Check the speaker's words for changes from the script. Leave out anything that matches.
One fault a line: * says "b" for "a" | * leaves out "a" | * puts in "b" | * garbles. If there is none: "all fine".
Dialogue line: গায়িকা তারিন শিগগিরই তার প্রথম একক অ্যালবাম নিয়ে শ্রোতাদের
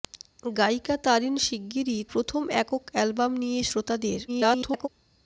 * leaves out "তার"
* garbles